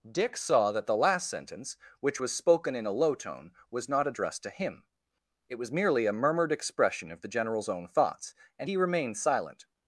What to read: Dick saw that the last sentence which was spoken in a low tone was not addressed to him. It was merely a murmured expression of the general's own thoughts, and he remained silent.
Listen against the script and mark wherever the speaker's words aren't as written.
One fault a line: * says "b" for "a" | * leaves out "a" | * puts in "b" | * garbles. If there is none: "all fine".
all fine